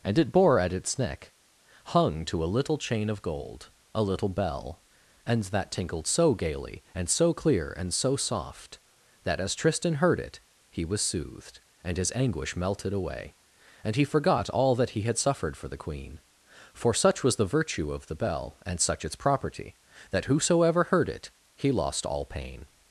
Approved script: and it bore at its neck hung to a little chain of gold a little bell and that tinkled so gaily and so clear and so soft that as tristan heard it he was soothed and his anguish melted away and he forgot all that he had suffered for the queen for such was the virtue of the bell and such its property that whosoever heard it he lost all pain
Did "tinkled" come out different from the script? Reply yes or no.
no